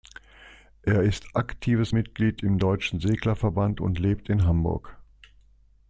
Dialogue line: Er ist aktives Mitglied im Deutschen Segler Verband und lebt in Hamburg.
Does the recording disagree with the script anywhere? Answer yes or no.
no